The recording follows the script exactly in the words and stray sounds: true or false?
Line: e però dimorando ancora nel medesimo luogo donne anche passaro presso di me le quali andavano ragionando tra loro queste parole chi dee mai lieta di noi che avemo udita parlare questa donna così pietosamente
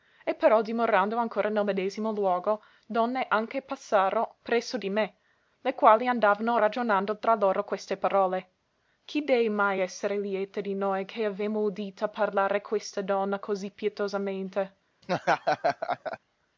false